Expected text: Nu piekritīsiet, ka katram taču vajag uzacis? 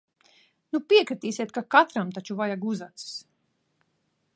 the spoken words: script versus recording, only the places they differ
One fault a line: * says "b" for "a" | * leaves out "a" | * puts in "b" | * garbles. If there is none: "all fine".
all fine